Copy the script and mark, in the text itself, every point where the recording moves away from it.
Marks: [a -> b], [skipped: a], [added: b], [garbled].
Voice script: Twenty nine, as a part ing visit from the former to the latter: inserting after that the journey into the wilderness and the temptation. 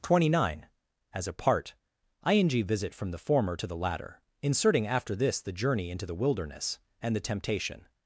Twenty nine, as a part ing visit from the former to the latter: inserting after [that -> this] the journey into the wilderness and the temptation.